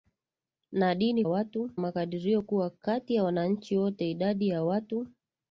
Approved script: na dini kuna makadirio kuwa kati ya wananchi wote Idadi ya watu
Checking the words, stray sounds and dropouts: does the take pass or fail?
fail